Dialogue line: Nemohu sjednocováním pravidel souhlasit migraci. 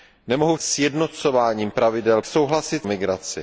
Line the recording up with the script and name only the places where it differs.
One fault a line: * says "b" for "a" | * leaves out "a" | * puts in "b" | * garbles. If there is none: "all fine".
all fine